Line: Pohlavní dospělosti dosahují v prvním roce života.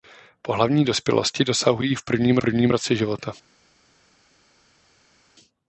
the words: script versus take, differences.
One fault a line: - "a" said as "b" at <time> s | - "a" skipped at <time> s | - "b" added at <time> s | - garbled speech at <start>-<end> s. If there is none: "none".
- "prvním" added at 2.4 s